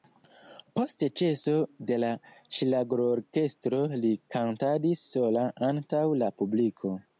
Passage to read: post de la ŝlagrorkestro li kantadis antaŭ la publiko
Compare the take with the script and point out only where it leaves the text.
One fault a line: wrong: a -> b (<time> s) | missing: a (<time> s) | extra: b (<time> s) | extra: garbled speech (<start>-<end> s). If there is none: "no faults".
extra: ĉeso (1.2 s)
extra: sola (5.1 s)